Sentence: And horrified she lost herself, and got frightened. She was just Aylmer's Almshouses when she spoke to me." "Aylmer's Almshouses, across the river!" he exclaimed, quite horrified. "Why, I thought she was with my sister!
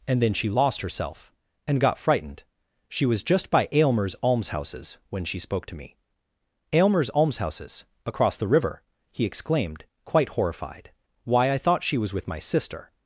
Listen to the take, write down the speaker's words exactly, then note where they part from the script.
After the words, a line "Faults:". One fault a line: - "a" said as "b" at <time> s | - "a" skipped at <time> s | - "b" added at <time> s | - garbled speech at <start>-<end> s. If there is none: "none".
And then she lost herself, and got frightened. She was just by Aylmer's Almshouses when she spoke to me." "Aylmer's Almshouses, across the river!" he exclaimed, quite horrified. "Why, I thought she was with my sister!
Faults:
- "horrified" said as "then" at 0.2 s
- "by" added at 3.5 s